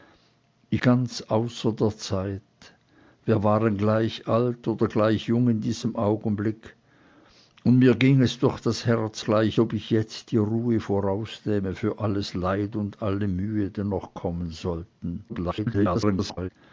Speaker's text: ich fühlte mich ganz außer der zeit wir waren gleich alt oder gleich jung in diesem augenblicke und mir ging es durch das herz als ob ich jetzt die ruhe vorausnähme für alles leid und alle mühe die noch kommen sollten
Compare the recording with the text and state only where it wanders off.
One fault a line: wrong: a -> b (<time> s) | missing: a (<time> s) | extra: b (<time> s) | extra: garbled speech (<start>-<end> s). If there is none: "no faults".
missing: fühlte mich (0.8 s)
wrong: als -> gleich (9.2 s)
extra: garbled speech (15.3-16.5 s)